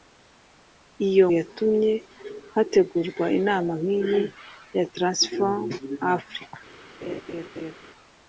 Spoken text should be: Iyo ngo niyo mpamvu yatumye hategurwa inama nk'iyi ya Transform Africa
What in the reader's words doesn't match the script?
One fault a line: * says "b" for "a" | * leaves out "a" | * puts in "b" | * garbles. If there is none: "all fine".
* leaves out "ngo niyo mpamvu"